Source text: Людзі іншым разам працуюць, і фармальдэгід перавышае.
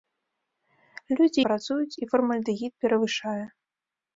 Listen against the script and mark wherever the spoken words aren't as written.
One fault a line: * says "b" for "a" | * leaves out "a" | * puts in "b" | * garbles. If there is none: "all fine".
* leaves out "іншым разам"